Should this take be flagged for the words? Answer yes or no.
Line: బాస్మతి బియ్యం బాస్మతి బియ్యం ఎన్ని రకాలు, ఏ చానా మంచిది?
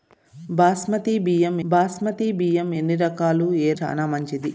no